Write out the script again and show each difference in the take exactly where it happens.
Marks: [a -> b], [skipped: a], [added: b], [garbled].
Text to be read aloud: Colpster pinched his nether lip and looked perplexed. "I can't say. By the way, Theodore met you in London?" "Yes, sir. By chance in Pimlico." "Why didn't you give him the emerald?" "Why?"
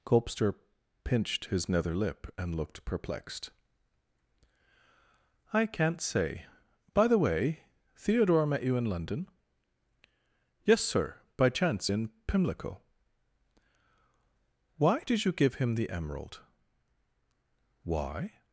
Colpster pinched his nether lip and looked perplexed. "I can't say. By the way, Theodore met you in London?" "Yes, sir. By chance in Pimlico." "Why [didn't -> did] you give him the emerald?" "Why?"